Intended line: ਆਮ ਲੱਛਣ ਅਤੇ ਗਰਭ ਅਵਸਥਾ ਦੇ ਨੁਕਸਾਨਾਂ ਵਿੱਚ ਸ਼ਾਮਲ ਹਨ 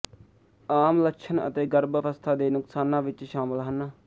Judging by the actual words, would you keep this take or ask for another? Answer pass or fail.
pass